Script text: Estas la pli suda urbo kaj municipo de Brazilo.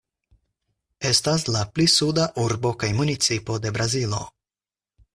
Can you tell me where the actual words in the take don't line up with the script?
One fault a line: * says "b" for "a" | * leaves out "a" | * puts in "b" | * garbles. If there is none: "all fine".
all fine